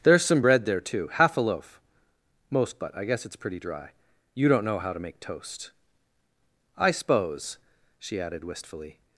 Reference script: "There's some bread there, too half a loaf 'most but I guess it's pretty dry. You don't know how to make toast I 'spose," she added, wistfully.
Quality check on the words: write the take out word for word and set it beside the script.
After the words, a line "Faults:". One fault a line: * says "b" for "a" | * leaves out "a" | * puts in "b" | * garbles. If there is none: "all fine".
"There's some bread there, too half a loaf 'most but I guess it's pretty dry. You don't know how to make toast I 'spose," she added, wistfully.
Faults:
all fine